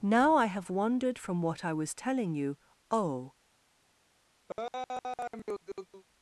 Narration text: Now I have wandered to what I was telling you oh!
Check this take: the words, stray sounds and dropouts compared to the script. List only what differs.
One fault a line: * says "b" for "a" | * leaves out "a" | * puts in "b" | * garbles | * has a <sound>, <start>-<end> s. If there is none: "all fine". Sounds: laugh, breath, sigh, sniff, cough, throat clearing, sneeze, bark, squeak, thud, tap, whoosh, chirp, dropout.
* says "from" for "to"
* has a laugh, 4.5-6.0 s